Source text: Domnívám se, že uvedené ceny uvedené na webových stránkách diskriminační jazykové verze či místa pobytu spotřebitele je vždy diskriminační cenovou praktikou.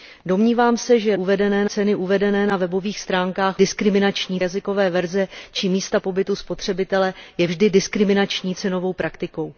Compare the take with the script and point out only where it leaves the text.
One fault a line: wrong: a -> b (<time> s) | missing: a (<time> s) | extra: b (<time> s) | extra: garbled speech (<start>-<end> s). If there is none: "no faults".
no faults